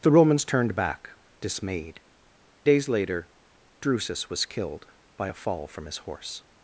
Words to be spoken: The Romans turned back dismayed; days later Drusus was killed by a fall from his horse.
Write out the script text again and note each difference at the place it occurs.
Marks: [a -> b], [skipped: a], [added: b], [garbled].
The Romans turned back dismayed; days later Drusus was killed by a fall from his horse.